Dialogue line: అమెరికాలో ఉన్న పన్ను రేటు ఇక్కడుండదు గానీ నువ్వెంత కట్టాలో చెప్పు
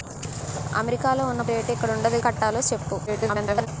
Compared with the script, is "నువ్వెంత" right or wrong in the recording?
wrong